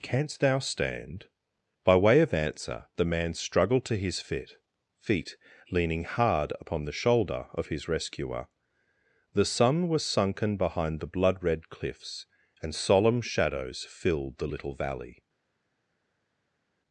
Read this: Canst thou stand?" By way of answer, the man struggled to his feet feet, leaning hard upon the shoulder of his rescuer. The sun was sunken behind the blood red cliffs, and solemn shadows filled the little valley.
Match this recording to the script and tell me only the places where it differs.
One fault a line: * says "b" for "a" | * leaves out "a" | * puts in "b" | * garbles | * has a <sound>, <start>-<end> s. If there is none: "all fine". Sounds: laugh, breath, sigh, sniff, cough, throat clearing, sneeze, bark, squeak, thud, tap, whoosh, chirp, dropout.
all fine